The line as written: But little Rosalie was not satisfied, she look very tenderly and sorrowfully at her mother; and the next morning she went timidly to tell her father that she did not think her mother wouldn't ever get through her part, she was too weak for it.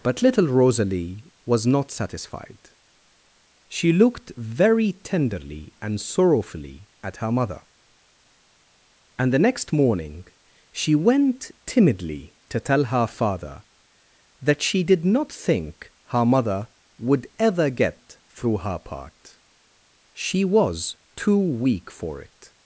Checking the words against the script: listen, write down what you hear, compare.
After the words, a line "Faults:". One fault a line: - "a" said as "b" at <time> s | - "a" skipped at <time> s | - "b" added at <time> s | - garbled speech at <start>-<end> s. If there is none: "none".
But little Rosalie was not satisfied, she looked very tenderly and sorrowfully at her mother; and the next morning she went timidly to tell her father that she did not think her mother would ever get through her part, she was too weak for it.
Faults:
- "look" said as "looked" at 3.9 s
- "wouldn't" said as "would" at 17.0 s